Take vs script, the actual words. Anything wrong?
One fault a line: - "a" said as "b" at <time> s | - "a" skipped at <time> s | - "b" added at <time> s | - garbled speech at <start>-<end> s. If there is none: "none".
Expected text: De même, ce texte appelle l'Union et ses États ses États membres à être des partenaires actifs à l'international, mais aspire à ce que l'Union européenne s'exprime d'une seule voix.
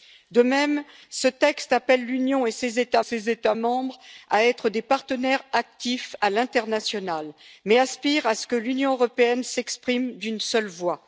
none